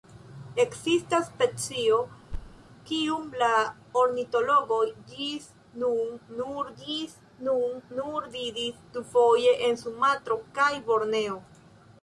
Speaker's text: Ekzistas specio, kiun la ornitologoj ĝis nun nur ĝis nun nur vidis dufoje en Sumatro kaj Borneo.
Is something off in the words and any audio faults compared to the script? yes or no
yes